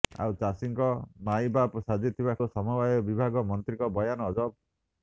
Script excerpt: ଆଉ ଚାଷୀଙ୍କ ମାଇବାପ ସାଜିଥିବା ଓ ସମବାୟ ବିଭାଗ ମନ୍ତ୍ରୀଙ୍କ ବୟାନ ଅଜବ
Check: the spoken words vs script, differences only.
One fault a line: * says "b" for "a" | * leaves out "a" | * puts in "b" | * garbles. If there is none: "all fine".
all fine